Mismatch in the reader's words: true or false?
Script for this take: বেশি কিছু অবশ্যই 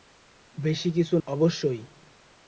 false